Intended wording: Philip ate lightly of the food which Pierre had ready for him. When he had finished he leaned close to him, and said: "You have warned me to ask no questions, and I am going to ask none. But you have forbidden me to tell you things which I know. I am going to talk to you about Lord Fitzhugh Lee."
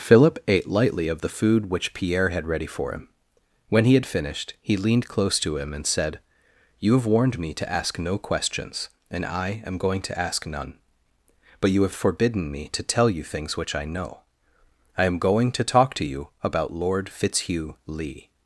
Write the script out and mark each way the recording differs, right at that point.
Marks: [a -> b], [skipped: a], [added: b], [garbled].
Philip ate lightly of the food which Pierre had ready for him. When he had finished he leaned close to him, and said: "You have warned me to ask no questions, and I am going to ask none. But you have forbidden me to tell you things which I know. I am going to talk to you about Lord Fitzhugh Lee."